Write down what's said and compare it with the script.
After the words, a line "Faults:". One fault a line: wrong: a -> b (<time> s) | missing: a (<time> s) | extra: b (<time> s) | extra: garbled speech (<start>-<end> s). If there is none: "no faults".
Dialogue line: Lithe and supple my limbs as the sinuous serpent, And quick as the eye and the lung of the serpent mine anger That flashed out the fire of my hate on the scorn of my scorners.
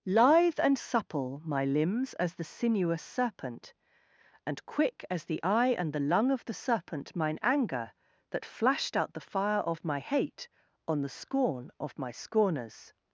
Lithe and supple my limbs as the sinuous serpent, And quick as the eye and the lung of the serpent mine anger That flashed out the fire of my hate on the scorn of my scorners.
Faults:
no faults